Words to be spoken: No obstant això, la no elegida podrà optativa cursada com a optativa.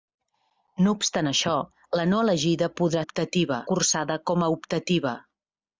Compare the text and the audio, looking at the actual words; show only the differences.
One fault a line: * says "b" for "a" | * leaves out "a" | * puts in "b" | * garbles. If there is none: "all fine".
all fine